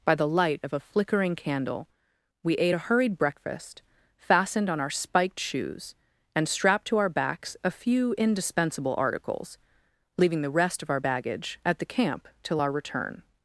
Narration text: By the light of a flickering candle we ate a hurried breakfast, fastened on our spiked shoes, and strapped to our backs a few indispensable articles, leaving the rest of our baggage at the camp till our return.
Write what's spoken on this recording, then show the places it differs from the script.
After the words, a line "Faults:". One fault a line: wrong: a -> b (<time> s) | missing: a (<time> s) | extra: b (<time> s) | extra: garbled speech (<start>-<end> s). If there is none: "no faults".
By the light of a flickering candle we ate a hurried breakfast, fastened on our spiked shoes, and strapped to our backs a few indispensable articles, leaving the rest of our baggage at the camp till our return.
Faults:
no faults